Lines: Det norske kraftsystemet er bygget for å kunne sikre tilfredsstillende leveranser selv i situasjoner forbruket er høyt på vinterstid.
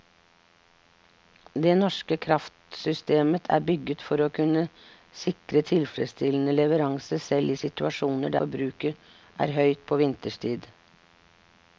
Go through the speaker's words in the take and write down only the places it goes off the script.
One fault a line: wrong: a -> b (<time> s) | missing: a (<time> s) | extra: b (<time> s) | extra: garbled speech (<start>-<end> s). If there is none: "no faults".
no faults